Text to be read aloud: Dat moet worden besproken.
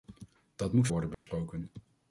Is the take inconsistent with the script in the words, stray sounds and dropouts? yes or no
yes